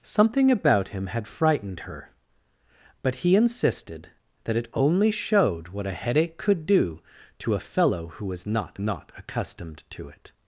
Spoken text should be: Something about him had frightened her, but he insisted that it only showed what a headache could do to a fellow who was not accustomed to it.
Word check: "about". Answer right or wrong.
right